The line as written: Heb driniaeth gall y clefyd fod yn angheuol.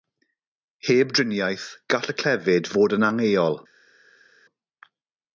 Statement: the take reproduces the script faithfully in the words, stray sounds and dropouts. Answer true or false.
true